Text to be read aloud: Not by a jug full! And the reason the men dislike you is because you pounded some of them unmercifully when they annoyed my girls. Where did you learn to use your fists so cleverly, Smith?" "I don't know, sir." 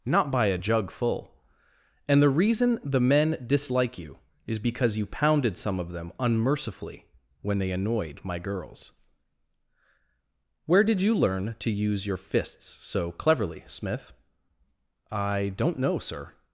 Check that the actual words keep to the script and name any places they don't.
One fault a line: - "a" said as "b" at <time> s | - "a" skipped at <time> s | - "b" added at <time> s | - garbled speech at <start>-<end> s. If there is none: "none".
none